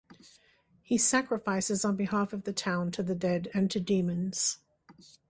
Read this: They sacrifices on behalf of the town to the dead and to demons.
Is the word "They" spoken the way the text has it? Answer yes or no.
no